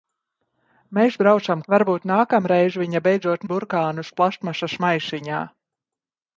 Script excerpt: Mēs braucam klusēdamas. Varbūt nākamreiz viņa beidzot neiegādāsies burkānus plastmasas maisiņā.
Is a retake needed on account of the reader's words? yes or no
yes